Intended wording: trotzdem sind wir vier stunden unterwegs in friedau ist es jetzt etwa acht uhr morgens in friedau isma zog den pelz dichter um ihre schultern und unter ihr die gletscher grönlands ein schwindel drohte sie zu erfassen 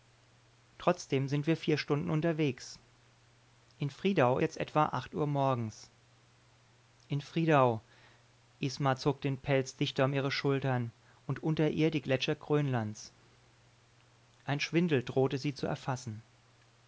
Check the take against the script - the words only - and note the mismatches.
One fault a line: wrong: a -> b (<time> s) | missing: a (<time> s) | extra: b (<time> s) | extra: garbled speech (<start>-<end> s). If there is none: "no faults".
missing: ist es (4.4 s)